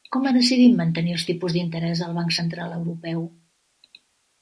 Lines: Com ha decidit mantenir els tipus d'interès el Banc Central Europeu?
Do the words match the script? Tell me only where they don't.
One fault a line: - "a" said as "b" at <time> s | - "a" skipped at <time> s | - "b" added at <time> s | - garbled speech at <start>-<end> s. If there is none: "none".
none